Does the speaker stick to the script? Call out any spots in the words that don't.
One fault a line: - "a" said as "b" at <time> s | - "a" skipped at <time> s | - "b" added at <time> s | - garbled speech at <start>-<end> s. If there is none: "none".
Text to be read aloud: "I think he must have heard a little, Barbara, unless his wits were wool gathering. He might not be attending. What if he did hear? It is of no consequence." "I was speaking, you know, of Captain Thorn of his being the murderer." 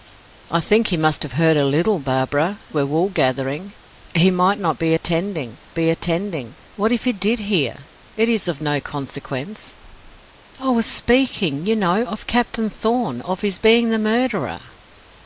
- "unless his wits" skipped at 2.6 s
- "be attending" added at 5.8 s